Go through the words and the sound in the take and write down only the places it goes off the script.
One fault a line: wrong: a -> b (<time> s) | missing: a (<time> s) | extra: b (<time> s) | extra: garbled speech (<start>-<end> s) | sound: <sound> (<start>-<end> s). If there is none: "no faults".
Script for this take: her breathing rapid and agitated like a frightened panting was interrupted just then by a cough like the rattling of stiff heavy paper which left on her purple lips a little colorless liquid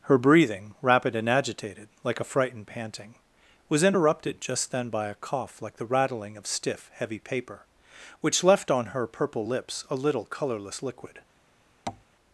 sound: tap (11.9-12.0 s)